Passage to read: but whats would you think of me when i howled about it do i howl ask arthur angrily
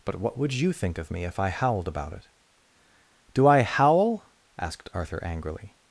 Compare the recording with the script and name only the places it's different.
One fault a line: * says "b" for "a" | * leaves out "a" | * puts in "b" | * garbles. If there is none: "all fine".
* says "what" for "whats"
* says "if" for "when"
* says "asked" for "ask"